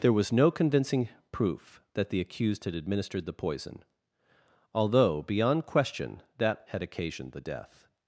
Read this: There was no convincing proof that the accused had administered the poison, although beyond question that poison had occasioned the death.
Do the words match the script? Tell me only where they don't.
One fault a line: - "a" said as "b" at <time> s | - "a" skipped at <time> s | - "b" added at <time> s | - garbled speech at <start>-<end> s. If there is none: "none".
- "poison" skipped at 6.7 s